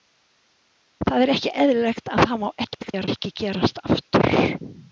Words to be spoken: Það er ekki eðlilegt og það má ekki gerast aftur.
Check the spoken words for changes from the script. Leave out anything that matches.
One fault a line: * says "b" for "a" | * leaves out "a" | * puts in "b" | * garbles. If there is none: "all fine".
* garbles